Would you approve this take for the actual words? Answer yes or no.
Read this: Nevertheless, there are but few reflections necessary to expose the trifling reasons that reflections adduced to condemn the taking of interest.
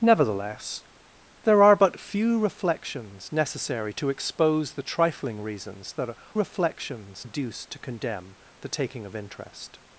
yes